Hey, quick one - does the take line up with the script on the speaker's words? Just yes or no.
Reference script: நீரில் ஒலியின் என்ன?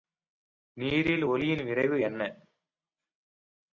no